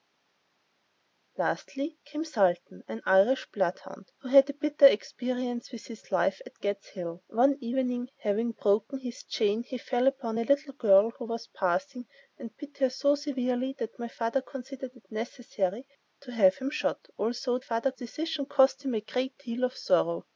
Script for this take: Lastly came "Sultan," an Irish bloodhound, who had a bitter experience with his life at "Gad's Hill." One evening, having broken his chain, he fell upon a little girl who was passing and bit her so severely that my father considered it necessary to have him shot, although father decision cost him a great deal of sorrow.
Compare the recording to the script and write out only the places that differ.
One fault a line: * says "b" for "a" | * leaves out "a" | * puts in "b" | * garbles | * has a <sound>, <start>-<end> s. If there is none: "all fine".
all fine